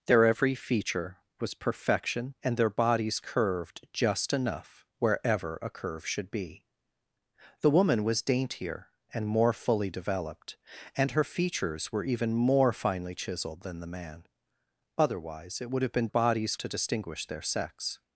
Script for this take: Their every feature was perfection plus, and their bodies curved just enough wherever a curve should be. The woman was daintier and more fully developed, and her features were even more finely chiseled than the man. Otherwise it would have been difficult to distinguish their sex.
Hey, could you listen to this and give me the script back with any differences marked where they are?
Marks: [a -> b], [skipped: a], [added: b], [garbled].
Their every feature was perfection [skipped: plus,] and their bodies curved just enough wherever a curve should be. The woman was daintier and more fully developed, and her features were even more finely chiseled than the man. Otherwise it would have been [difficult -> bodies] to distinguish their sex.